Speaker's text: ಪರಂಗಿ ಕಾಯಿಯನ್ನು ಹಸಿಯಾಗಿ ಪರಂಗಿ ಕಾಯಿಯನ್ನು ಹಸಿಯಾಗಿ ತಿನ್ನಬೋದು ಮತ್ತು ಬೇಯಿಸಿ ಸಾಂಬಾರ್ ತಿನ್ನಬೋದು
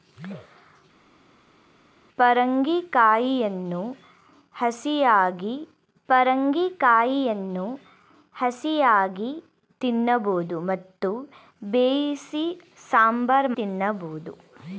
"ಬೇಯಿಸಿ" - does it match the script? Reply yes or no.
yes